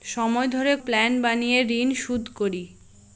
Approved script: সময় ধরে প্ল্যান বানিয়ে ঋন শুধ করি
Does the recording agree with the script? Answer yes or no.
yes